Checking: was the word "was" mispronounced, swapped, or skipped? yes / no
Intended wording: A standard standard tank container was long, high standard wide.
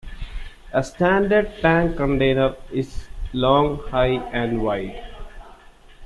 yes